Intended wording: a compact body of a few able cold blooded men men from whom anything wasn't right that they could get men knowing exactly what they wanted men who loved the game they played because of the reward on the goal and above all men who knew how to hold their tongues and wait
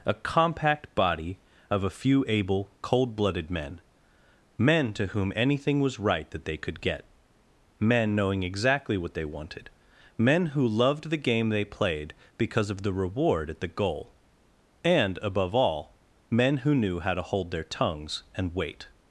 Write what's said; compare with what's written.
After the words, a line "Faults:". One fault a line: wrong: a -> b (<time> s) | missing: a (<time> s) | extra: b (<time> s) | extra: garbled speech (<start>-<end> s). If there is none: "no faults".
a compact body of a few able cold blooded men men to whom anything was right that they could get men knowing exactly what they wanted men who loved the game they played because of the reward at the goal and above all men who knew how to hold their tongues and wait
Faults:
wrong: from -> to (4.9 s)
wrong: wasn't -> was (5.8 s)
wrong: on -> at (13.5 s)